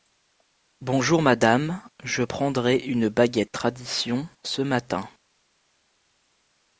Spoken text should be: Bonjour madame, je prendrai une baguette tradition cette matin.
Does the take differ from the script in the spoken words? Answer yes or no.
yes